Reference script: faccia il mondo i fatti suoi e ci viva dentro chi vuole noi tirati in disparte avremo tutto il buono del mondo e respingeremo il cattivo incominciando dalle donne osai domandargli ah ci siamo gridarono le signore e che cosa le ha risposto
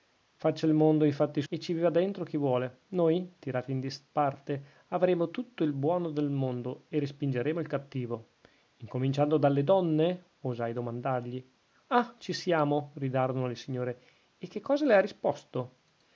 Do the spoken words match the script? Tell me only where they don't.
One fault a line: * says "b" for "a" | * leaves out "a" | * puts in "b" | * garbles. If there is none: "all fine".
* leaves out "suoi"